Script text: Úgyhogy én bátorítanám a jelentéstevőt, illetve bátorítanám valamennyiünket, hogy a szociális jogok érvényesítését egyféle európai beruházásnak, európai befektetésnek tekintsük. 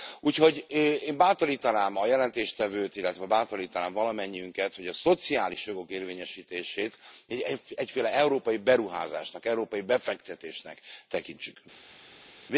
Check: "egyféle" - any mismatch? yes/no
no